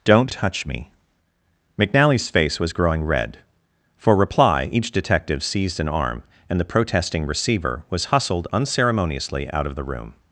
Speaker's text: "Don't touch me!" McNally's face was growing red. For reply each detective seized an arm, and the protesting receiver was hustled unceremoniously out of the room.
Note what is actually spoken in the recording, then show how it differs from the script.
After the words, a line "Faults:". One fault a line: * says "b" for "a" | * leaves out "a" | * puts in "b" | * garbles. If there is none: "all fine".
"Don't touch me!" McNally's face was growing red. For reply each detective seized an arm, and the protesting receiver was hustled unceremoniously out of the room.
Faults:
all fine